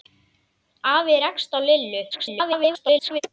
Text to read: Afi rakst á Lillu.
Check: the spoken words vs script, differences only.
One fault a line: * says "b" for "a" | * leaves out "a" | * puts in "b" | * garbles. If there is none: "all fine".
* garbles